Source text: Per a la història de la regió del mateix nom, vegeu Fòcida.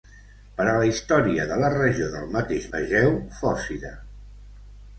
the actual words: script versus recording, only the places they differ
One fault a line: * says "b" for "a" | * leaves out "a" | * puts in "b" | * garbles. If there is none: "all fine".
* leaves out "nom"